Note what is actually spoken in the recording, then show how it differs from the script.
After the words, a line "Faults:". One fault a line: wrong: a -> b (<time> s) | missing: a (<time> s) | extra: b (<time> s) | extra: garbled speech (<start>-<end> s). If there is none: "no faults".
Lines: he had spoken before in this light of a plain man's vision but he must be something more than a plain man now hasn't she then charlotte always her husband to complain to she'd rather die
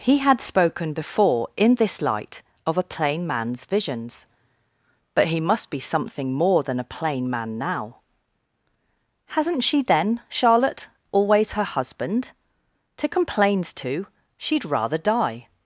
he had spoken before in this light of a plain man's visions but he must be something more than a plain man now hasn't she then charlotte always her husband to complains to she'd rather die
Faults:
wrong: vision -> visions (3.6 s)
wrong: complain -> complains (13.1 s)